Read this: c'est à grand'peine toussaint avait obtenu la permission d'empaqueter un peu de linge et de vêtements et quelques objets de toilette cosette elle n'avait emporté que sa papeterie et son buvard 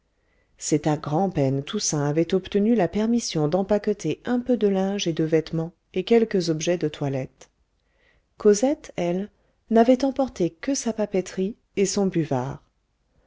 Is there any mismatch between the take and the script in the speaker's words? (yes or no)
no